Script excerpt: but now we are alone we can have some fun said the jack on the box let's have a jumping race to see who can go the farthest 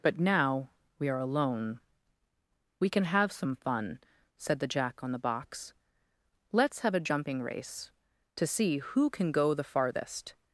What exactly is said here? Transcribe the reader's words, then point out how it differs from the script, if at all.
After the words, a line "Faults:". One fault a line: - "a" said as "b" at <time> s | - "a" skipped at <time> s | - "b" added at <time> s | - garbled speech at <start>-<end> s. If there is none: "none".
but now we are alone we can have some fun said the jack on the box let's have a jumping race to see who can go the farthest
Faults:
none